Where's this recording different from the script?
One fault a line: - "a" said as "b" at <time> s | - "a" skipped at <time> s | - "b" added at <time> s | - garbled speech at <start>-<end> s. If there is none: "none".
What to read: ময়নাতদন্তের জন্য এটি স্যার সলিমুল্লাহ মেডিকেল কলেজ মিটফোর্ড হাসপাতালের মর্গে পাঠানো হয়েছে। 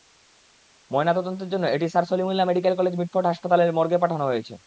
none